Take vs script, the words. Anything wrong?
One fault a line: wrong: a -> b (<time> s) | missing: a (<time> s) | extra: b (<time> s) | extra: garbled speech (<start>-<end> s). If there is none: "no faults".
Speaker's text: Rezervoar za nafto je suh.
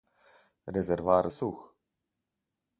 missing: za nafto je (1.3 s)